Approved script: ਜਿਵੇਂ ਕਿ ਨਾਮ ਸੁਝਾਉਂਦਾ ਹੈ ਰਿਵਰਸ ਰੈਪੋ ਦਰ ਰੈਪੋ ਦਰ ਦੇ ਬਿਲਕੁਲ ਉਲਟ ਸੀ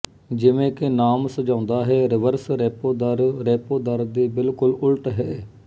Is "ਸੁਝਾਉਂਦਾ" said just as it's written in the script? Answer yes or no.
yes